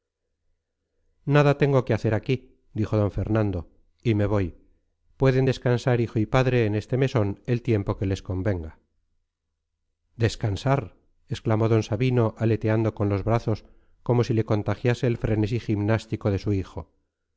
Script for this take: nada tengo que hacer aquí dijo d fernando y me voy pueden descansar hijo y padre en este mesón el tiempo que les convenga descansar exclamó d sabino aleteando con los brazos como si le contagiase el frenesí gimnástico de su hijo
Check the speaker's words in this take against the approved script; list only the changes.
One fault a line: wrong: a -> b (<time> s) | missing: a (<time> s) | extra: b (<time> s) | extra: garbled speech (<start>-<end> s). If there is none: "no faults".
no faults